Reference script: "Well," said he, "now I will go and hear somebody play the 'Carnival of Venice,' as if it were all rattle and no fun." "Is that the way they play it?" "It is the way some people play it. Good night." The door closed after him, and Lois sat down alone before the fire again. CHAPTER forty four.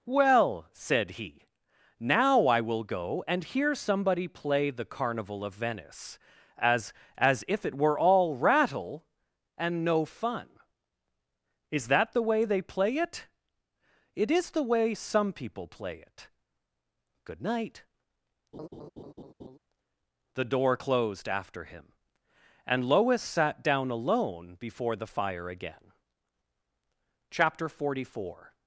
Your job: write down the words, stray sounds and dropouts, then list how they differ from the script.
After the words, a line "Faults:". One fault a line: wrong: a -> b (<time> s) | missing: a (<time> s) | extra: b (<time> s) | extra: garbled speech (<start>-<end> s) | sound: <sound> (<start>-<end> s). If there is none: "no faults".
"Well," said he, "now I will go and hear somebody play the 'Carnival of Venice,' as as if it were all rattle and no fun." "Is that the way they play it?" "It is the way some people play it. Good night." The door closed after him, and Lois sat down alone before the fire again. CHAPTER forty four.
Faults:
extra: as (7.2 s)
sound: laugh (18.5-19.6 s)